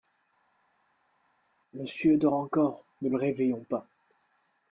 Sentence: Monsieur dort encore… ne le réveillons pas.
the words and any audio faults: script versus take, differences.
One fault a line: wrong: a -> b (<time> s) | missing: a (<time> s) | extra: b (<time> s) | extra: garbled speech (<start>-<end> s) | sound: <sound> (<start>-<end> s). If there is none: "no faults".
no faults